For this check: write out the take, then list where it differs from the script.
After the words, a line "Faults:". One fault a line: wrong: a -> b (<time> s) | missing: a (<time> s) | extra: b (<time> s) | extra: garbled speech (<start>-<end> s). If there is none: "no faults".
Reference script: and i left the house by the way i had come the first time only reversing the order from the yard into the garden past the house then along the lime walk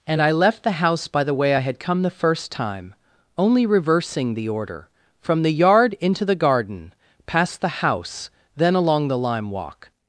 and i left the house by the way i had come the first time only reversing the order from the yard into the garden past the house then along the lime walk
Faults:
no faults